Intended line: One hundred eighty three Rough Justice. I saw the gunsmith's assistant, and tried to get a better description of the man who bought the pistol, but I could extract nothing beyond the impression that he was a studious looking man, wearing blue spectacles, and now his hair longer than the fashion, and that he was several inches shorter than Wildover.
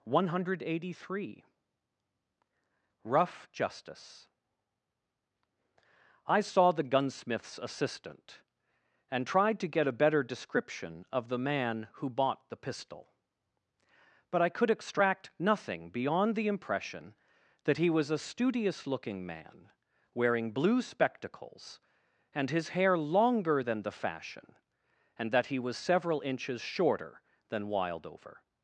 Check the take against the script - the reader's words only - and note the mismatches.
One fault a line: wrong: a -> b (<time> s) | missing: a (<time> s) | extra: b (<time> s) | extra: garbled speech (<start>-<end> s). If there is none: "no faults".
missing: now (22.5 s)